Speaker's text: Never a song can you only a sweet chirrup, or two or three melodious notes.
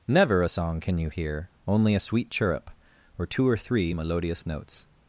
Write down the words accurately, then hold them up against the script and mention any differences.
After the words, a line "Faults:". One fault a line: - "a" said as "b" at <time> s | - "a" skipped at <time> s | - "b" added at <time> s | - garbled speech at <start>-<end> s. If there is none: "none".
Never a song can you hear, only a sweet chirrup, or two or three melodious notes.
Faults:
- "hear" added at 1.1 s